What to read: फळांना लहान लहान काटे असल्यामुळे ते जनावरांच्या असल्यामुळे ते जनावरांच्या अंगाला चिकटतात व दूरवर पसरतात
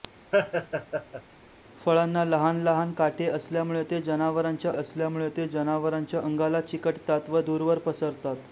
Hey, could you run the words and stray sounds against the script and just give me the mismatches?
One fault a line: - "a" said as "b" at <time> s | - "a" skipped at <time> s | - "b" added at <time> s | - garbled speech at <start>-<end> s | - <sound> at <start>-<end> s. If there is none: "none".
- laugh at 0.3-1.2 s